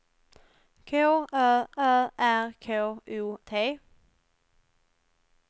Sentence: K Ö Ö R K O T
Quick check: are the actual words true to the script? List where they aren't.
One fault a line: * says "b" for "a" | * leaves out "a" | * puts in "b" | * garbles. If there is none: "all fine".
all fine